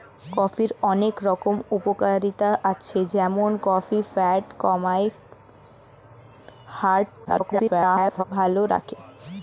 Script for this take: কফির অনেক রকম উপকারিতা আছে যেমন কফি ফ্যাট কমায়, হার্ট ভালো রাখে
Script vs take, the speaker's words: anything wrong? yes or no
yes